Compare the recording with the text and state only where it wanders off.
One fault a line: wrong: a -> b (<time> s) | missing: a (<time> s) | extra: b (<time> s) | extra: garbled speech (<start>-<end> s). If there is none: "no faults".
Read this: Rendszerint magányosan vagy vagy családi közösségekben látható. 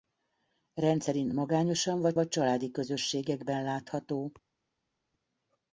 no faults